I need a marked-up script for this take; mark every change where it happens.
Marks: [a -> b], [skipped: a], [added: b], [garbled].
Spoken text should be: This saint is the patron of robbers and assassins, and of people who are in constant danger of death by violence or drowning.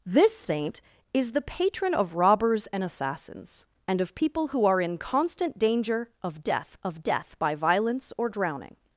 This saint is the patron of robbers and assassins, and of people who are in constant danger of death [added: of death] by violence or drowning.